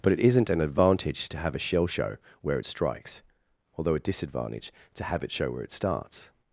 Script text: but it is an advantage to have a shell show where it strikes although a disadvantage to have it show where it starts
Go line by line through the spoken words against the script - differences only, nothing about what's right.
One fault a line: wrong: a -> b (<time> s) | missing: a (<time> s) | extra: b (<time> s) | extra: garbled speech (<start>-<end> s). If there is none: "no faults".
wrong: is -> isn't (0.2 s)